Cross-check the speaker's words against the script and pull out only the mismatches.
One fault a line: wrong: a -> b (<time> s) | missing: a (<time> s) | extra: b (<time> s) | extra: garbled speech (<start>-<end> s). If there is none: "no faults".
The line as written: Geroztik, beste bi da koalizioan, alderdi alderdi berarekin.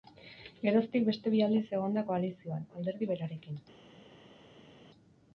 extra: aldiz egon (1.5 s)
missing: alderdi (3.1 s)